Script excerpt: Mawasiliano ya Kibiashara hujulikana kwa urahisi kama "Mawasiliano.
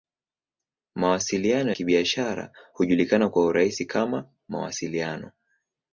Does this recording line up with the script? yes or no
no